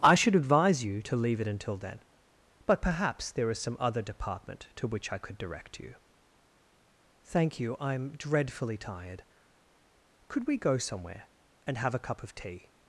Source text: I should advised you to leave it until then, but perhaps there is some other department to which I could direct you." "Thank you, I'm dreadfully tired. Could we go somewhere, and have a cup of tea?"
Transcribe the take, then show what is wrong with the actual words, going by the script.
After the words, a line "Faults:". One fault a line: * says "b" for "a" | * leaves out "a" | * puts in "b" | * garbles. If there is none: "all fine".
I should advise you to leave it until then, but perhaps there is some other department to which I could direct you." "Thank you, I'm dreadfully tired. Could we go somewhere, and have a cup of tea?"
Faults:
* says "advise" for "advised"